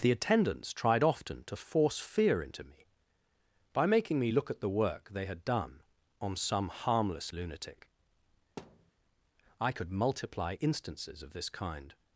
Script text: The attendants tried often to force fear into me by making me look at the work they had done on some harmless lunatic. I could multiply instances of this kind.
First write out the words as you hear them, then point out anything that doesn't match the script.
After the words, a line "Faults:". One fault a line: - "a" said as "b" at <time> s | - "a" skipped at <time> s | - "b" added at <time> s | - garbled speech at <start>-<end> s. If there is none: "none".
The attendants tried often to force fear into me by making me look at the work they had done on some harmless lunatic. I could multiply instances of this kind.
Faults:
none